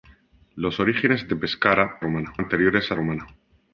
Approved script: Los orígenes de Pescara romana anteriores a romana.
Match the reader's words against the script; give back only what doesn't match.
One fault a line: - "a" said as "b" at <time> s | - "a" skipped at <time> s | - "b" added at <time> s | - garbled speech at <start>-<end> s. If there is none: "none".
none